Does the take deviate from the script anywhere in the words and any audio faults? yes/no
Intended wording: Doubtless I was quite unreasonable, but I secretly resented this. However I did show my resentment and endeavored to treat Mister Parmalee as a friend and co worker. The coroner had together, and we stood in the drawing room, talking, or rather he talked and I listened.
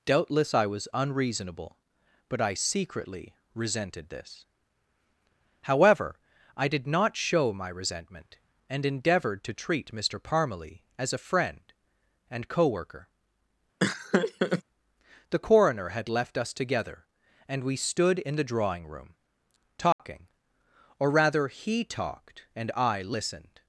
yes